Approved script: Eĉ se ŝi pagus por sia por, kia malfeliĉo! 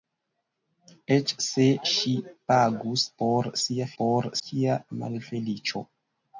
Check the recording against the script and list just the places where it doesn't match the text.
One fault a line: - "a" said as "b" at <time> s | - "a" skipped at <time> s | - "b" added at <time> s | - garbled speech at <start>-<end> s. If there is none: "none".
none